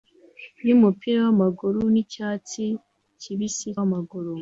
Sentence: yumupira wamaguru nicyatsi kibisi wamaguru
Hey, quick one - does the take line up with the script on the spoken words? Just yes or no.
yes